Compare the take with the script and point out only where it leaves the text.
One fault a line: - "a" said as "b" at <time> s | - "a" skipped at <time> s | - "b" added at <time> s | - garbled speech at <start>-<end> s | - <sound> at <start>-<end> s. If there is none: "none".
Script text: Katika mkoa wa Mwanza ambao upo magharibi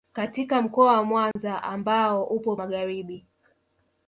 - dropout at 1.3-1.4 s